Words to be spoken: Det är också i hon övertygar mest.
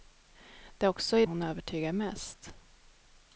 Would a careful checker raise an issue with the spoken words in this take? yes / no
no